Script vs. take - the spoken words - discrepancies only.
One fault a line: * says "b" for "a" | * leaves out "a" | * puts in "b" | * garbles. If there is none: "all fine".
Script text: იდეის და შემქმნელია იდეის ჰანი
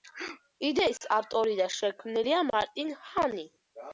* puts in "ავტორი"
* says "მარტინ" for "იდეის"